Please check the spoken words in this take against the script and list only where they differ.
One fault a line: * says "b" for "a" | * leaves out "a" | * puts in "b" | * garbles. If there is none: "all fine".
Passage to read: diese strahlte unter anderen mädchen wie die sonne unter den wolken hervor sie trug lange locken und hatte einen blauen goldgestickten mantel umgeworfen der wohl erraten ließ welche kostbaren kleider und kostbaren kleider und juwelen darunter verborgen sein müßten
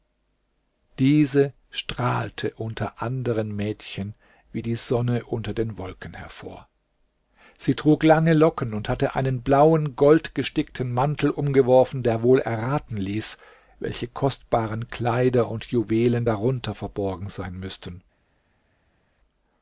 * leaves out "kostbaren kleider und"